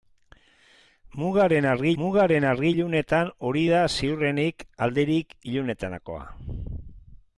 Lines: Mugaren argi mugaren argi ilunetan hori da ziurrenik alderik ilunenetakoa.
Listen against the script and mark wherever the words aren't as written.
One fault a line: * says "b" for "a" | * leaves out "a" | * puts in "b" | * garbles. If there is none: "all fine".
all fine